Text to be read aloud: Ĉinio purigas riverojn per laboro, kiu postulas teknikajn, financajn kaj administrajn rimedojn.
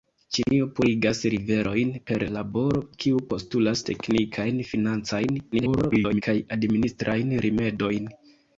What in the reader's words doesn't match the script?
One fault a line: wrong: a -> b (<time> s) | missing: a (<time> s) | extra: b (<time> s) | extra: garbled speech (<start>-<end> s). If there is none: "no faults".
extra: garbled speech (5.5-6.2 s)